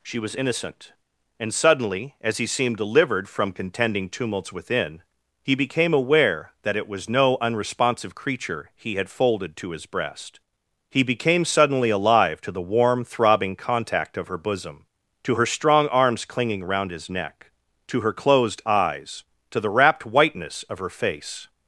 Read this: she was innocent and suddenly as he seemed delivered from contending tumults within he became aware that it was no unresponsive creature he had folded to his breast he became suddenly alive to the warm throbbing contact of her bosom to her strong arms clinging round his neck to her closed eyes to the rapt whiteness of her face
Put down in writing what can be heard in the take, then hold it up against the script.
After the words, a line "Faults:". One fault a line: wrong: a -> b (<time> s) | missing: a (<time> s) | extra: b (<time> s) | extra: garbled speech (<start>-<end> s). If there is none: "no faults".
she was innocent and suddenly as he seemed delivered from contending tumults within he became aware that it was no unresponsive creature he had folded to his breast he became suddenly alive to the warm throbbing contact of her bosom to her strong arms clinging round his neck to her closed eyes to the rapt whiteness of her face
Faults:
no faults